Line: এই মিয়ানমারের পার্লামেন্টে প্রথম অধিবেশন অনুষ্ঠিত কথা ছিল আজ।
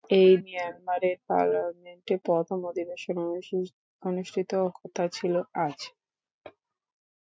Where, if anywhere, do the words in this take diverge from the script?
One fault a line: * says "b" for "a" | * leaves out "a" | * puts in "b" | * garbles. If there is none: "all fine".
all fine